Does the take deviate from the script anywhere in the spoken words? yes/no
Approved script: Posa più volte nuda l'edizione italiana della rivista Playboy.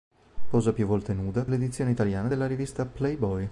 no